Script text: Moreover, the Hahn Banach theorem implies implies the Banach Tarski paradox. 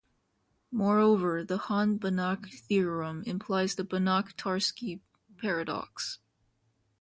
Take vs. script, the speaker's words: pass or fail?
fail